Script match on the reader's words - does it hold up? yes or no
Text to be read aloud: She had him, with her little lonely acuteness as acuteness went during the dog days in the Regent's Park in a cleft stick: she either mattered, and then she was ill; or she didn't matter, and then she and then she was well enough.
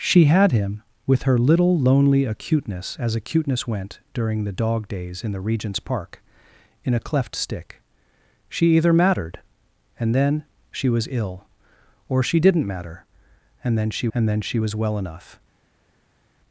yes